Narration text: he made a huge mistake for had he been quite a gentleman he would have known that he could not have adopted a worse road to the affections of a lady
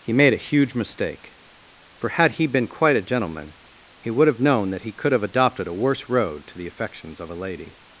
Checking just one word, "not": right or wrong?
wrong